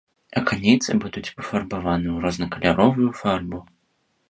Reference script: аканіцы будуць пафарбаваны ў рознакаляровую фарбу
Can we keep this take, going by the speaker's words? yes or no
yes